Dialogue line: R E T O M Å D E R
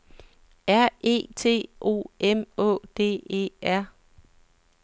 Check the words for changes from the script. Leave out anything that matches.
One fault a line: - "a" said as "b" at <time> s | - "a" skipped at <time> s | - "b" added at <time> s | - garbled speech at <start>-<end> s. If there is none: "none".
none